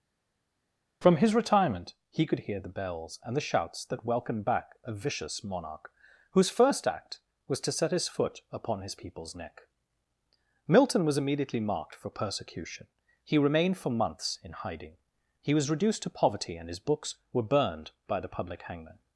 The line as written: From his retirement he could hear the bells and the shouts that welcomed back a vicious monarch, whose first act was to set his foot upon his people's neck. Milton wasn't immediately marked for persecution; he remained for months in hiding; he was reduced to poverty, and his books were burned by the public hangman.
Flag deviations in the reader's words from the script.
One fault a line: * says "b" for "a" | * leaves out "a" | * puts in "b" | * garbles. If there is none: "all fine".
* says "was" for "wasn't"